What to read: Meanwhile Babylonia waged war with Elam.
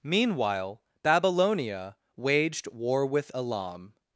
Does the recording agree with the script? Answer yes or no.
yes